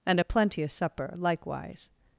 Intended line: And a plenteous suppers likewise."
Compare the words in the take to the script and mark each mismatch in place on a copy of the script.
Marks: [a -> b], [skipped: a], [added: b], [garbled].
And a plenteous [suppers -> supper] likewise."